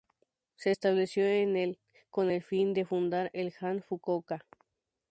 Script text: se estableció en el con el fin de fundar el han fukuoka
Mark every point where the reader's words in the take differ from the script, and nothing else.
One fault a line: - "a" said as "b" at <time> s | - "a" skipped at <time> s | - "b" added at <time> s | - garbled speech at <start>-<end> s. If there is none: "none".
none